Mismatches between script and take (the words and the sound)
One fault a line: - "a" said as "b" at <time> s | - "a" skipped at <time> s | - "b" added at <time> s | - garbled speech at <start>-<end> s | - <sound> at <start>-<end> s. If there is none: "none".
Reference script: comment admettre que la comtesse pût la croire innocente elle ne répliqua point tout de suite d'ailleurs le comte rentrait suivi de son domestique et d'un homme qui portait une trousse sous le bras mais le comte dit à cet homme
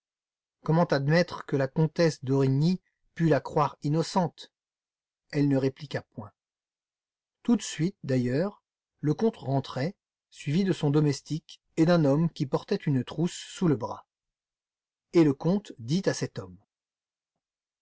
- "d'origny" added at 2.2 s
- "mais" said as "et" at 15.1 s